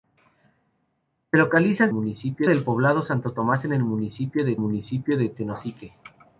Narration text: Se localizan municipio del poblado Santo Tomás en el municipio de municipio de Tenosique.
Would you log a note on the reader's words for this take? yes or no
no